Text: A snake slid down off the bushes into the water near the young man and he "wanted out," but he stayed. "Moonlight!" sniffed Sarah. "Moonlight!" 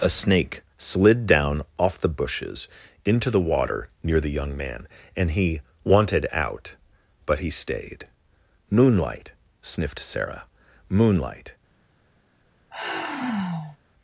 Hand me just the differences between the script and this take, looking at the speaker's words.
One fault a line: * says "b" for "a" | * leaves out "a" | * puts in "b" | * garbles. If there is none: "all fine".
all fine